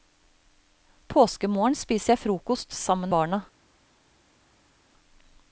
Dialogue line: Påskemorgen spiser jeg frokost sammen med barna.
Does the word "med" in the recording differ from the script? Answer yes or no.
yes